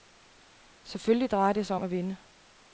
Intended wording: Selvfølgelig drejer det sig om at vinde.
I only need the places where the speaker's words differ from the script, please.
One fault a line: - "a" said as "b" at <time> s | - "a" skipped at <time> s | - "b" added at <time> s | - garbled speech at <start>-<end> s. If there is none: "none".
none